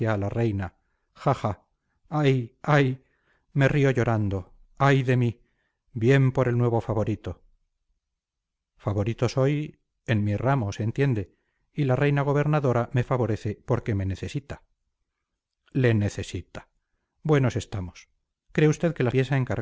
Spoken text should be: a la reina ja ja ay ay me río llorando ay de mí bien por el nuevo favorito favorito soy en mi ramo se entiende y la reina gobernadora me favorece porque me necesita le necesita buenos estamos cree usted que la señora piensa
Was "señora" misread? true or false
true